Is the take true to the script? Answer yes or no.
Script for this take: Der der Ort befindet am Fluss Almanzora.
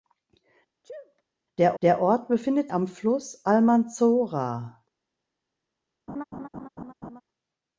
yes